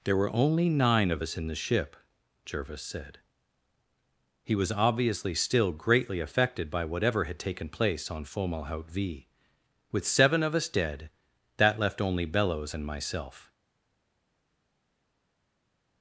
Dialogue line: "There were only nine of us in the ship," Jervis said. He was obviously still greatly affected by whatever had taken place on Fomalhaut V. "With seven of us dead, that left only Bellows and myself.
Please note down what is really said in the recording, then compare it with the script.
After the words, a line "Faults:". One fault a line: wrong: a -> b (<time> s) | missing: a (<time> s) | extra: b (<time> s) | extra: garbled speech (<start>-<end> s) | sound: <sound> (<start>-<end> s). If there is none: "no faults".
"There were only nine of us in the ship," Jervis said. He was obviously still greatly affected by whatever had taken place on Fomalhaut V. "With seven of us dead, that left only Bellows and myself.
Faults:
no faults